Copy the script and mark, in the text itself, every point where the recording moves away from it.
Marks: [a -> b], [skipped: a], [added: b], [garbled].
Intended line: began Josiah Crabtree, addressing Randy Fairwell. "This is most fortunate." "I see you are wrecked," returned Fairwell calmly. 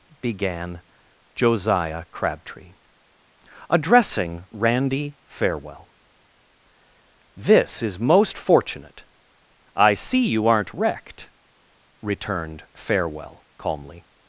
began Josiah Crabtree, addressing Randy Fairwell. "This is most fortunate." "I see you [are -> aren't] wrecked," returned Fairwell calmly.